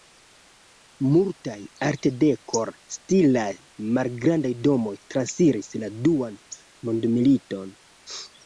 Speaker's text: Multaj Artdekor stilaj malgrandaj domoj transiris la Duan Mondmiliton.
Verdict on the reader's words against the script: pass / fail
pass